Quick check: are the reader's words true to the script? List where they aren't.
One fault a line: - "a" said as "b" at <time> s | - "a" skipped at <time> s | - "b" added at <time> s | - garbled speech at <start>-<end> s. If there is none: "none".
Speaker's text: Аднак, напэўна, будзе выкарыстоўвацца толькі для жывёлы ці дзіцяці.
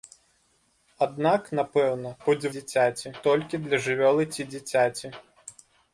- "выкарыстоўвацца" said as "дзіцяці" at 2.5 s